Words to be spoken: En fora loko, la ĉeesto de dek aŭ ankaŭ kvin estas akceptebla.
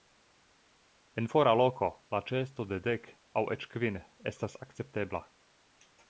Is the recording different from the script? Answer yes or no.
yes